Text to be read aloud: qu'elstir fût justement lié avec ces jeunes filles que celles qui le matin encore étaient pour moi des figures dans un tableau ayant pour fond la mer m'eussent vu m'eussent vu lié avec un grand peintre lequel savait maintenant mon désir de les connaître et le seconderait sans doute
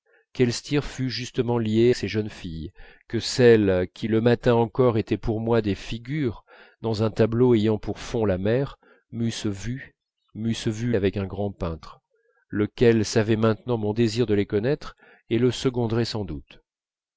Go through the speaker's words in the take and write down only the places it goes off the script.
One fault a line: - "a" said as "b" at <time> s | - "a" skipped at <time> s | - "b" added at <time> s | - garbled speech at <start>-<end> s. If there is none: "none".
- "avec" skipped at 1.9 s
- "lié" skipped at 10.9 s